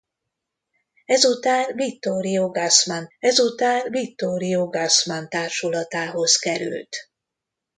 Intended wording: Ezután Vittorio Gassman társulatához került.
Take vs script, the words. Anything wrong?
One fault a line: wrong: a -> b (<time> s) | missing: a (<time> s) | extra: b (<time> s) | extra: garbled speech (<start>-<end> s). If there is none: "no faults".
extra: ezután Vittorio Gassman (3.2 s)